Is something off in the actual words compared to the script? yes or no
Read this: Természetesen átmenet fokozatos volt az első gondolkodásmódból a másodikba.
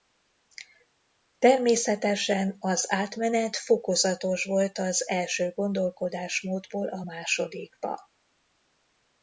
yes